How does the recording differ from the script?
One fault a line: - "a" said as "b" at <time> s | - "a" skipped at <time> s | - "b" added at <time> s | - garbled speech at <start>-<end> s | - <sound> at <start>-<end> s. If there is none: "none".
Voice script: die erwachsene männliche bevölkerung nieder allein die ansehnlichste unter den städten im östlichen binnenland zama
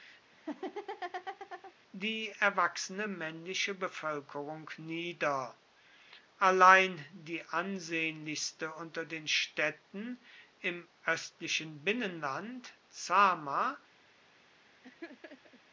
- laugh at 0.3-1.7 s
- laugh at 14.8-15.6 s